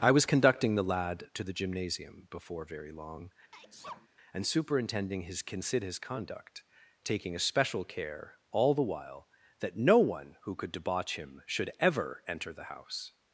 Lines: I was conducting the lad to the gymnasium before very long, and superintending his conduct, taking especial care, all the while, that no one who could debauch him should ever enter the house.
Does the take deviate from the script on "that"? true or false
false